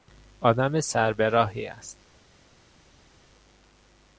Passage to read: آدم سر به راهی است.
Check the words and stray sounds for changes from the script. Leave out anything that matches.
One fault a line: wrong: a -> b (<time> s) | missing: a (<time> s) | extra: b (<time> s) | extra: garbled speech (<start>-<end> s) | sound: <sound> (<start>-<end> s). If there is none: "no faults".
no faults